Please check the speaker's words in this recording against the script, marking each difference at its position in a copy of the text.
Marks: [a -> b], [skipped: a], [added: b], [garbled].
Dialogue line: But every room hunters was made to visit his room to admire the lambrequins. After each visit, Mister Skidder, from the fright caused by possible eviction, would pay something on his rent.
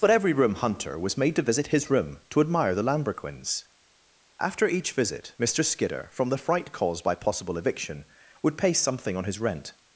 But every room [hunters -> hunter] was made to visit his room to admire the lambrequins. After each visit, Mister Skidder, from the fright caused by possible eviction, would pay something on his rent.